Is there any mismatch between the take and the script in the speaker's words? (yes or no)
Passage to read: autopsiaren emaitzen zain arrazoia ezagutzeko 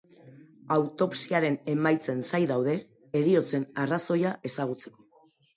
yes